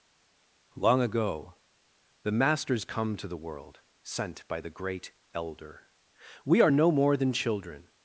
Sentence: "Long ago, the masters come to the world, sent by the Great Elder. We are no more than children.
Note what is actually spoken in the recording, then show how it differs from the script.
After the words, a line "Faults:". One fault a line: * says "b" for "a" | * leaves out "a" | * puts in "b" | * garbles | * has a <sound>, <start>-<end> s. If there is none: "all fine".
"Long ago, the masters come to the world, sent by the Great Elder. We are no more than children.
Faults:
all fine